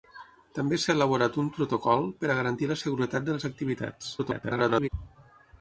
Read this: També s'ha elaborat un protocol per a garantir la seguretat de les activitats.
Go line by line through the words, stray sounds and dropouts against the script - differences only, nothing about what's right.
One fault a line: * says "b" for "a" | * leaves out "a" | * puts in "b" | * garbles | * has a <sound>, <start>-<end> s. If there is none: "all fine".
* garbles